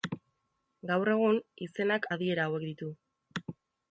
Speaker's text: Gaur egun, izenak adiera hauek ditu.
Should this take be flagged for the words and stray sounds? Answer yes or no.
no